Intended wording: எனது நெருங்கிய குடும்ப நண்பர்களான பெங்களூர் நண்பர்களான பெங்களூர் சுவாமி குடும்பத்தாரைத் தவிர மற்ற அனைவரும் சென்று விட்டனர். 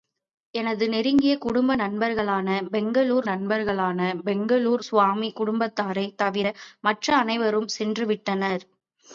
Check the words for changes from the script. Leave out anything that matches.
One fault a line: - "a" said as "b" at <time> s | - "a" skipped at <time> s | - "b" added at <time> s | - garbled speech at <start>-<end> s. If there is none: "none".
none